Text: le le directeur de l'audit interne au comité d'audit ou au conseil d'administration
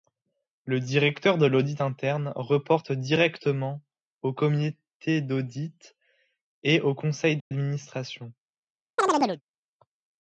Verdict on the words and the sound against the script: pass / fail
fail